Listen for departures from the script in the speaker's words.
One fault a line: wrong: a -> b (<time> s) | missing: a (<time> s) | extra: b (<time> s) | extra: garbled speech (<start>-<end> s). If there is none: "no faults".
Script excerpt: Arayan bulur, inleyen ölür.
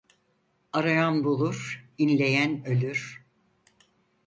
no faults